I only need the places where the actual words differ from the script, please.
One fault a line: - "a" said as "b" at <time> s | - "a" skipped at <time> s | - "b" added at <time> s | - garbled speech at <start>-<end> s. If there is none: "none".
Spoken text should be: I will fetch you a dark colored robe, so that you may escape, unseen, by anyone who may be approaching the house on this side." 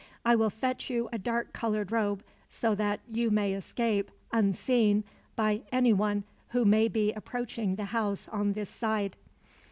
none